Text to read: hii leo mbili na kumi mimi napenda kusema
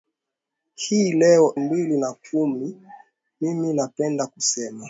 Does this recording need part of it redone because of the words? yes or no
no